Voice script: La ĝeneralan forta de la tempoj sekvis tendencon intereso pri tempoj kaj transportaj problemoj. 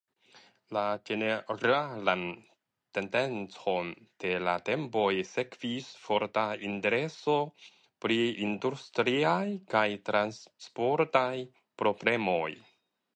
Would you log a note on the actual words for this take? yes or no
yes